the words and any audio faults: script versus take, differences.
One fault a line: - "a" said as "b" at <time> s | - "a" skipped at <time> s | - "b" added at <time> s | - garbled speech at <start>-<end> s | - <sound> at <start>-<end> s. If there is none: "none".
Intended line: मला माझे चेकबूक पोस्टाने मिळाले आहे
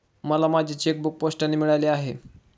none